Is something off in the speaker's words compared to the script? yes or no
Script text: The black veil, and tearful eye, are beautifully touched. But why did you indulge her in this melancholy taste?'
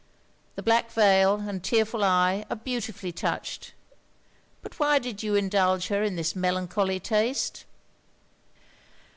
no